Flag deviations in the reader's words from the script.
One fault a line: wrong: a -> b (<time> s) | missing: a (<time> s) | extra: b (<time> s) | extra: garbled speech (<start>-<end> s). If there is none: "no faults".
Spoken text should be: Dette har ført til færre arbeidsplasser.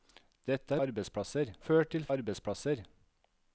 wrong: har -> arbeidsplasser (0.8 s)
missing: færre (2.1 s)